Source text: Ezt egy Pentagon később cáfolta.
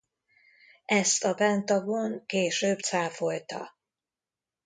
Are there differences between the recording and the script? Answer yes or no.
yes